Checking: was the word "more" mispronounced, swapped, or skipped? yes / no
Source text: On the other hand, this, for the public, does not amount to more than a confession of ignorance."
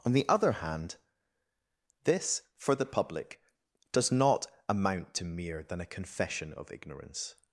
yes